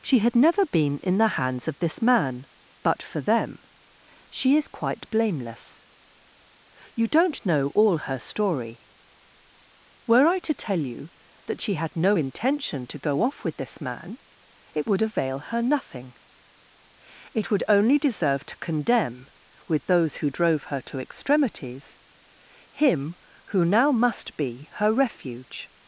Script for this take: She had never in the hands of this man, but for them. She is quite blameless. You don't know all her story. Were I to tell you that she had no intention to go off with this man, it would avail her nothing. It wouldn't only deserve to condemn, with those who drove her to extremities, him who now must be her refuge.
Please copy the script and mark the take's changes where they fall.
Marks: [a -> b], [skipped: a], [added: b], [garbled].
She had never [added: been] in the hands of this man, but for them. She is quite blameless. You don't know all her story. Were I to tell you that she had no intention to go off with this man, it would avail her nothing. It [wouldn't -> would] only deserve to condemn, with those who drove her to extremities, him who now must be her refuge.